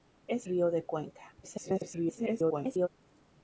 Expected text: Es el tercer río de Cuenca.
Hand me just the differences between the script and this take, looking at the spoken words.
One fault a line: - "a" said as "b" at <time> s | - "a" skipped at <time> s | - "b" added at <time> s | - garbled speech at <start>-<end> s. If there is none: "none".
- "el tercer" skipped at 0.5 s
- garbled speech at 1.4-2.9 s